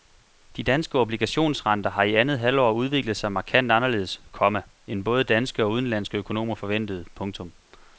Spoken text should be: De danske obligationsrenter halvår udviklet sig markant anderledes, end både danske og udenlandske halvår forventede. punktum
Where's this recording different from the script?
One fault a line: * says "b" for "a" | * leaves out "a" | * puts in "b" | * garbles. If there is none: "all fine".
* puts in "har i andet"
* puts in "komma"
* says "økonomer" for "halvår"